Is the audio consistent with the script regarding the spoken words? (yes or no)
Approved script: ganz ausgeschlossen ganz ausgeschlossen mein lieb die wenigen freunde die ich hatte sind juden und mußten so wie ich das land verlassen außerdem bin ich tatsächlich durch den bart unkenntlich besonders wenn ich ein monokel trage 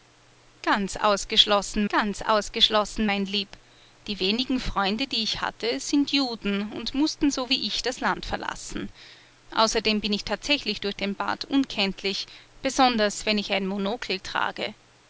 yes